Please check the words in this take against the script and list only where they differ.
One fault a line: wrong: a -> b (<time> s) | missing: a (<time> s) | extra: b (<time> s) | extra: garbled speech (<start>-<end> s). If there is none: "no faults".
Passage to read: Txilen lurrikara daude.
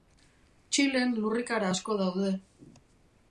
extra: asko (1.7 s)